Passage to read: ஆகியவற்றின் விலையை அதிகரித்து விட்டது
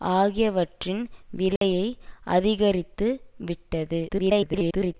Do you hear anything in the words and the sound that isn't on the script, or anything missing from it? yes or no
yes